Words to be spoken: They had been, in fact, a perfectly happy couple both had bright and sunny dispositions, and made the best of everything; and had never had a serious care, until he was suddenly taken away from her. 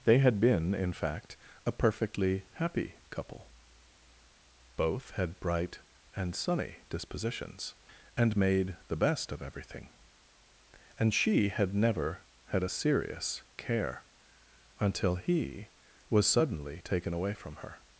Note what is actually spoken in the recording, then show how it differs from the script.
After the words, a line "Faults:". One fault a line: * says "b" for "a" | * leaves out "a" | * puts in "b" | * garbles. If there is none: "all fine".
They had been, in fact, a perfectly happy couple both had bright and sunny dispositions, and made the best of everything; and she had never had a serious care, until he was suddenly taken away from her.
Faults:
* puts in "she"